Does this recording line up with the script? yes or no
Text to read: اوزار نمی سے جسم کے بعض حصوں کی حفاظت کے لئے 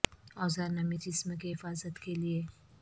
no